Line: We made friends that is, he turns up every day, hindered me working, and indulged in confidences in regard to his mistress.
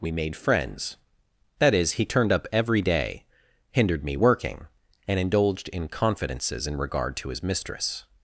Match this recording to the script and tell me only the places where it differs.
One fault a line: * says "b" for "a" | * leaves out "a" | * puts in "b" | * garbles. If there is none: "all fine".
* says "turned" for "turns"